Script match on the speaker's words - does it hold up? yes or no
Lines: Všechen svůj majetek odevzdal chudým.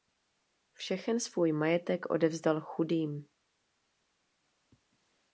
yes